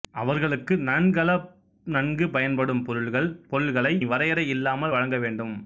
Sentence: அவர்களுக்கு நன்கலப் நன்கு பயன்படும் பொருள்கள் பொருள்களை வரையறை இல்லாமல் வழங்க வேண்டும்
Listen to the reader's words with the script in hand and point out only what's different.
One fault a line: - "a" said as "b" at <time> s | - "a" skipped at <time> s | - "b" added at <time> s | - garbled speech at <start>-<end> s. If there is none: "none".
none